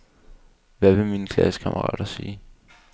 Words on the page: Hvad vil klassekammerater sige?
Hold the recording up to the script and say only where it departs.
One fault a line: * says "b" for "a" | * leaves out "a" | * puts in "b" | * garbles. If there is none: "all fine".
* puts in "mine"